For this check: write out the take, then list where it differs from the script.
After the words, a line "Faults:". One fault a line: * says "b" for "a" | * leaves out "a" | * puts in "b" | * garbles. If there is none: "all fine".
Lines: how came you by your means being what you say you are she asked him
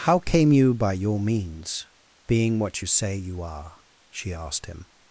how came you by your means being what you say you are she asked him
Faults:
all fine